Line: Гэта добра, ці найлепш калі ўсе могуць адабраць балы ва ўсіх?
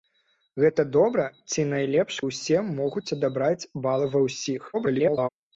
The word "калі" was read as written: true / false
false